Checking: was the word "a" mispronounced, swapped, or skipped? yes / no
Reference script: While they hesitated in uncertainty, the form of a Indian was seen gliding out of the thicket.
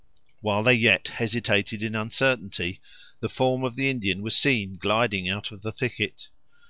yes